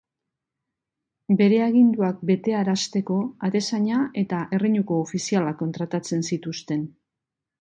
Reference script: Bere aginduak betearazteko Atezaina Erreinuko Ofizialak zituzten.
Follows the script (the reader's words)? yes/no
no